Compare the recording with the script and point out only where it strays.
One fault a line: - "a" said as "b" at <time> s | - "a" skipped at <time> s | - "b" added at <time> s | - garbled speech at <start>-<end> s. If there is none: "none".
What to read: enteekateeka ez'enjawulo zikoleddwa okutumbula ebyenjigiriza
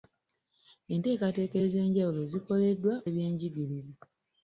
- "okutumbula" skipped at 2.9 s